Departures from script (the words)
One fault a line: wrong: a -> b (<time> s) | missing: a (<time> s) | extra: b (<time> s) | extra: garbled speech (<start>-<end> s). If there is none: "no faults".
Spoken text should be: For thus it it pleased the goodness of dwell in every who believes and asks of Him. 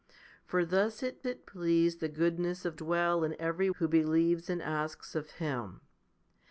no faults